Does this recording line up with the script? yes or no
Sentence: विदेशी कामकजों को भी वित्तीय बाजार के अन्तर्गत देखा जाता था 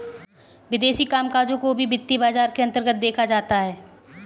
no